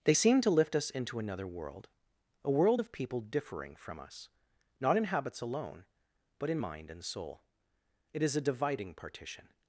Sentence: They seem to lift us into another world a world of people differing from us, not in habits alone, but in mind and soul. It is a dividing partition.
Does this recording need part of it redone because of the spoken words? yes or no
no